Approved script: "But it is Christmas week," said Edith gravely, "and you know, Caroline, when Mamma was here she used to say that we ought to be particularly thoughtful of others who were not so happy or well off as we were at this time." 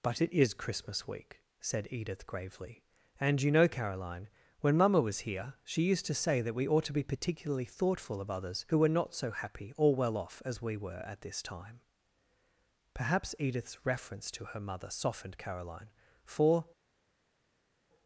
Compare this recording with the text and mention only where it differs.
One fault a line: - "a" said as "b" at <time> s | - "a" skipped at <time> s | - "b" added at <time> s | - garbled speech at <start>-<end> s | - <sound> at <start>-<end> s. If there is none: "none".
- "Perhaps Edith's reference to her mother softened Caroline for" added at 12.9 s